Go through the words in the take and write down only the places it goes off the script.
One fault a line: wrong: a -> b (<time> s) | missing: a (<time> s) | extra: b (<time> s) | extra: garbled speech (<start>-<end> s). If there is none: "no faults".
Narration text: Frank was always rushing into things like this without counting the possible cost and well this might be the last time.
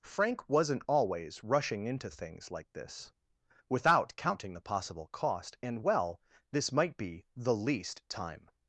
wrong: was -> wasn't (0.5 s)
wrong: last -> least (7.5 s)